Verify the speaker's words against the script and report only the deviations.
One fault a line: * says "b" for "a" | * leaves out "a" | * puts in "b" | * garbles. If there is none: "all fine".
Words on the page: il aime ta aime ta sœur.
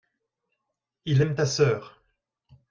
* leaves out "aime ta"